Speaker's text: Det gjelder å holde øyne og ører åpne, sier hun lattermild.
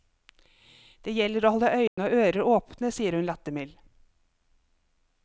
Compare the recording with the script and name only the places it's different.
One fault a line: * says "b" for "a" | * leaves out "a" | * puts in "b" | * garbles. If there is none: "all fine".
all fine